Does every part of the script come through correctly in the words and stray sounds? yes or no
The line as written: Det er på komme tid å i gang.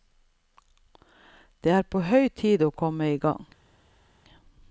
no